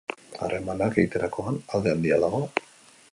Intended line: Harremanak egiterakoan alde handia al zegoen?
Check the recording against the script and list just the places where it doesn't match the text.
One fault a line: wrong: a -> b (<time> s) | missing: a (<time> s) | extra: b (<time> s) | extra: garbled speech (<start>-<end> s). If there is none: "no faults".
wrong: zegoen -> dago (2.3 s)